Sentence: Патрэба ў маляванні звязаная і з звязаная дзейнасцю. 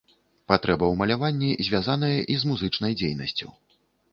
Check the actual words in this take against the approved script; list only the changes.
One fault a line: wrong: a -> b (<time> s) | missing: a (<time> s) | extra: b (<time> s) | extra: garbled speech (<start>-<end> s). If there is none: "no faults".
wrong: звязаная -> музычнай (2.5 s)